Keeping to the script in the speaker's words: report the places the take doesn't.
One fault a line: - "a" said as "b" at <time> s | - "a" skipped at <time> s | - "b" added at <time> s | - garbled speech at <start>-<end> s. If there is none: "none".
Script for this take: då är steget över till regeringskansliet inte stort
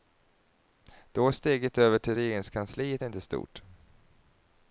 none